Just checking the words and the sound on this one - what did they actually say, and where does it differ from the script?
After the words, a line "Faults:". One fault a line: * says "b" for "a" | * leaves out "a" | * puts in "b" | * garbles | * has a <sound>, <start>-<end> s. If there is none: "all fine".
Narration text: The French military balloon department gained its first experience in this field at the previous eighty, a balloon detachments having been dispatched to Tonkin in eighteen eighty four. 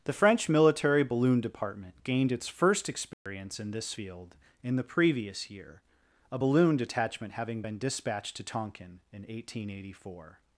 The French military balloon department gained its first experience in this field in the previous year, a balloon detachment having been dispatched to Tonkin in eighteen eighty four.
Faults:
* has a dropout, 3.1-3.3 s
* says "in" for "at"
* says "year" for "eighty"
* says "detachment" for "detachments"